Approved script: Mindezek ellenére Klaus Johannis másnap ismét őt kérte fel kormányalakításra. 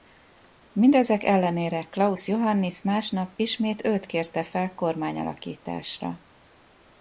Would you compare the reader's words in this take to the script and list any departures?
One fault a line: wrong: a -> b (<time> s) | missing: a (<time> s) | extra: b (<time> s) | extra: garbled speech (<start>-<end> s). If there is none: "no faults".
no faults